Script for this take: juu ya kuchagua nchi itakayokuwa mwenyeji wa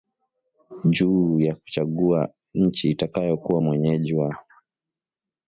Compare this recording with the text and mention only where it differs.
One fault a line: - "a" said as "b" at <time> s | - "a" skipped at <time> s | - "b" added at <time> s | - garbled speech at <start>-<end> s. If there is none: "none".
none